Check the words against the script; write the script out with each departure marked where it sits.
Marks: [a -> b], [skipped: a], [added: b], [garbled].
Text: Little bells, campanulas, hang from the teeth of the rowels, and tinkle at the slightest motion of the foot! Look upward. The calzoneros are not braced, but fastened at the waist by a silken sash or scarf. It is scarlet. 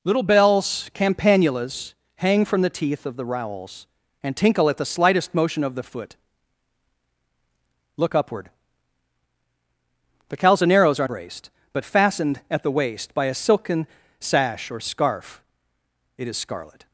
Little bells, campanulas, hang from the teeth of the rowels, and tinkle at the slightest motion of the foot! Look upward. The calzoneros are [skipped: not] braced, but fastened at the waist by a silken sash or scarf. It is scarlet.